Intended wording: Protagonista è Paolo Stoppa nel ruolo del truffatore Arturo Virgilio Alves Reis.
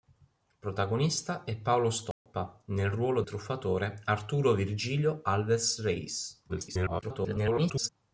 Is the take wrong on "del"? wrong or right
wrong